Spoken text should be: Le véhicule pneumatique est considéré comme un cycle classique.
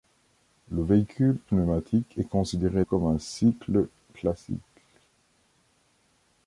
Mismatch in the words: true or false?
false